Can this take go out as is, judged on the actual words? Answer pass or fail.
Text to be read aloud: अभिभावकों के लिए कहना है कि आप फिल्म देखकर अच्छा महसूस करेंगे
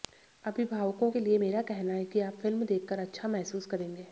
fail